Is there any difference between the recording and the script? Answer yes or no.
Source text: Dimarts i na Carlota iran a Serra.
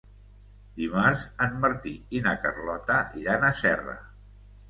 yes